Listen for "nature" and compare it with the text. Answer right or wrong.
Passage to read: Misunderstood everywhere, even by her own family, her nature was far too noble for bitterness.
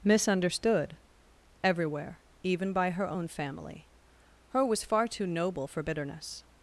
wrong